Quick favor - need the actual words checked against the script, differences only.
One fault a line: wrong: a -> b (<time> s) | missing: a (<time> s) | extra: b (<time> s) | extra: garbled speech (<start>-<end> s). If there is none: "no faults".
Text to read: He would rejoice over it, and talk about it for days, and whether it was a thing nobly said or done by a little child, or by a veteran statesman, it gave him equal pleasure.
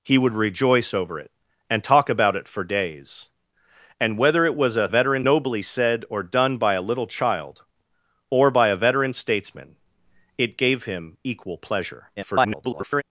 wrong: thing -> veteran (4.9 s)
extra: garbled speech (12.2-13.0 s)